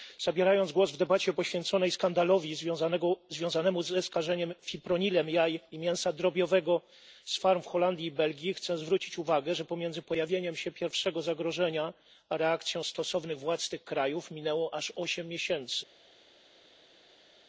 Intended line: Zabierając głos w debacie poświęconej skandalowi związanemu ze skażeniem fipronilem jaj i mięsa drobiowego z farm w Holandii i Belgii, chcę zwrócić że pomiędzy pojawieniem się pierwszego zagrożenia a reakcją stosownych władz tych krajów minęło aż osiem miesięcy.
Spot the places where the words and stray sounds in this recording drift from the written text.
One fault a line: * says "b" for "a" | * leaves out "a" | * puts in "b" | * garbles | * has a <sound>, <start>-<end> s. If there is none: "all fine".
* puts in "uwagę"